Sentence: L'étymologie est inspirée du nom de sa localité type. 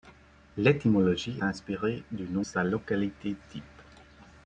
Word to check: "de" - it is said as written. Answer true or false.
false